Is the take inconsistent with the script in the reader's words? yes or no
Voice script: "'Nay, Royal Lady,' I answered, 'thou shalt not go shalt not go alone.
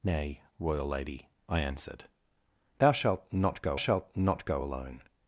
no